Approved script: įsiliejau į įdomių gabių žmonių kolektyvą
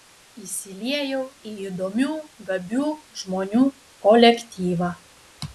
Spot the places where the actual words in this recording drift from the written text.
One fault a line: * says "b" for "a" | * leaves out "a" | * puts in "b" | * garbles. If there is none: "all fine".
all fine